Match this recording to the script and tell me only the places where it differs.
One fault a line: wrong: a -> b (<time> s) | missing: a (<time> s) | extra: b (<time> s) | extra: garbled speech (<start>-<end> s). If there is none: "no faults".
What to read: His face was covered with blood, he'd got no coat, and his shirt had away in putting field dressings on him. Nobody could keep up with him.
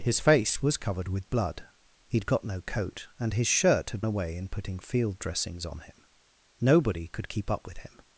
no faults